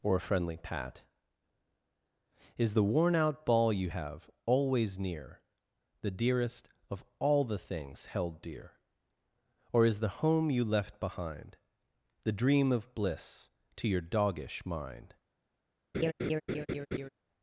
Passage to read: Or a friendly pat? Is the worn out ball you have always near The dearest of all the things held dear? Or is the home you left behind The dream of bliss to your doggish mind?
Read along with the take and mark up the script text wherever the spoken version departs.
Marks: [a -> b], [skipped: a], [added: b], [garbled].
Or a friendly pat? Is the worn out ball you have always near The dearest of all the things held dear? Or is the home you left behind The dream of bliss to your doggish mind?